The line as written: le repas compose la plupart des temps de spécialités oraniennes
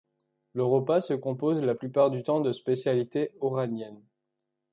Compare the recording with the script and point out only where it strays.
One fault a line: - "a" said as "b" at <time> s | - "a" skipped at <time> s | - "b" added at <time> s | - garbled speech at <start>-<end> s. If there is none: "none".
- "se" added at 1.0 s
- "des" said as "du" at 2.1 s